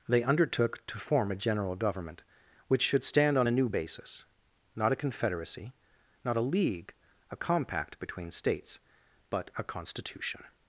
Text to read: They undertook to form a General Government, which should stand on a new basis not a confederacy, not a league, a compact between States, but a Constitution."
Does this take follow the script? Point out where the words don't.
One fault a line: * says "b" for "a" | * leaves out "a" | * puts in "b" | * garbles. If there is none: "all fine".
all fine